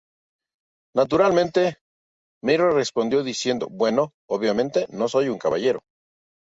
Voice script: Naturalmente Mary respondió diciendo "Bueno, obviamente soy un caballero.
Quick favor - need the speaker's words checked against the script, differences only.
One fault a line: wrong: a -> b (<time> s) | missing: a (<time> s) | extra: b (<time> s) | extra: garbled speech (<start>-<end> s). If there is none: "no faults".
extra: no (4.9 s)